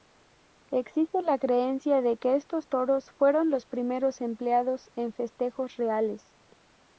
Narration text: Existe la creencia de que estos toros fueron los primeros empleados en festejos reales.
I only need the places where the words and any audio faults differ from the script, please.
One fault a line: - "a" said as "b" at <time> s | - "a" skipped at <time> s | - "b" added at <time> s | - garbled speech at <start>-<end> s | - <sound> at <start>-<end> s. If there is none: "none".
none